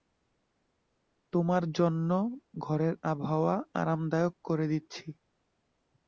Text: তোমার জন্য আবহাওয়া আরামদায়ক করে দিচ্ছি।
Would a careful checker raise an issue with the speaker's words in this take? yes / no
yes